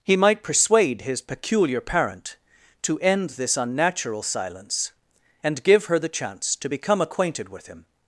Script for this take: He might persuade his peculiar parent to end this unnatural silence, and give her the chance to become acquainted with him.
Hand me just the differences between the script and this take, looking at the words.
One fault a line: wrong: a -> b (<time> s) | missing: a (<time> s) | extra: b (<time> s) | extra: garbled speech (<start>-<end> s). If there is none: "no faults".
no faults